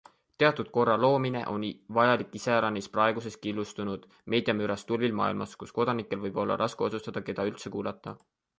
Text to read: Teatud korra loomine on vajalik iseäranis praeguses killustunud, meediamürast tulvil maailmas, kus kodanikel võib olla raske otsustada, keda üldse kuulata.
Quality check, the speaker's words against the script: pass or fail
pass